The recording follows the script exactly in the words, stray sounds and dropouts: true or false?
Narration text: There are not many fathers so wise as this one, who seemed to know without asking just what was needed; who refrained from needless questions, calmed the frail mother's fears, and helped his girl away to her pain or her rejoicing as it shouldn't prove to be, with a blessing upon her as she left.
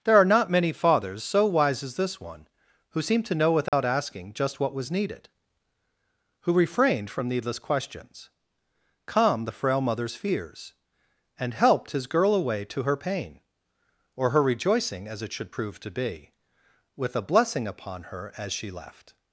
false